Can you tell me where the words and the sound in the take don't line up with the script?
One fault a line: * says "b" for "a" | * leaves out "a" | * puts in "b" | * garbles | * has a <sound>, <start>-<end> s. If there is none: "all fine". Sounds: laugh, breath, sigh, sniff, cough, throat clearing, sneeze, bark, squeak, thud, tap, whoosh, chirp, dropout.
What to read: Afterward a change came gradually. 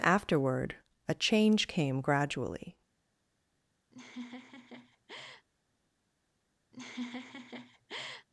* has a laugh, 3.9-5.5 s
* has a laugh, 6.7-8.3 s